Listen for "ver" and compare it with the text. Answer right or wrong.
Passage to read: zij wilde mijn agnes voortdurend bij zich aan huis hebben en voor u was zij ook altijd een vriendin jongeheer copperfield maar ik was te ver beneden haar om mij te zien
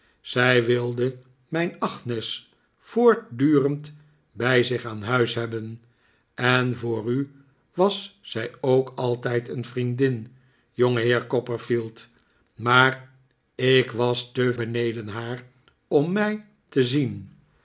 wrong